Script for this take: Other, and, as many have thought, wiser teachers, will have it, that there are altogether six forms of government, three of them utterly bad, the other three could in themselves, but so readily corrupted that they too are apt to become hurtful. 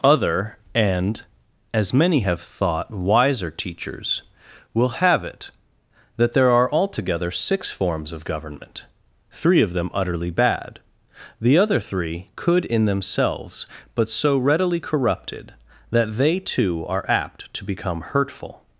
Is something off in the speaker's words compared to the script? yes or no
no